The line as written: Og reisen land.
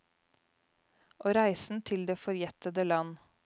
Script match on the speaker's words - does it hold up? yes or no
no